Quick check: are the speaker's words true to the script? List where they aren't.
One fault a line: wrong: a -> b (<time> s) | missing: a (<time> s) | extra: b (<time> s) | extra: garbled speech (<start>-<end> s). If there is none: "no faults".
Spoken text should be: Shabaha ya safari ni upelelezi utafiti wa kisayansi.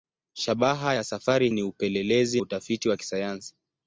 no faults